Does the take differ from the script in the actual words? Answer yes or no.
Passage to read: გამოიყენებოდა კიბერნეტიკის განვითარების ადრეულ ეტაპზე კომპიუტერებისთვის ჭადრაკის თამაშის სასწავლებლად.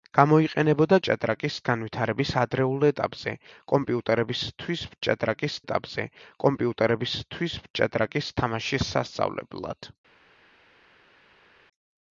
yes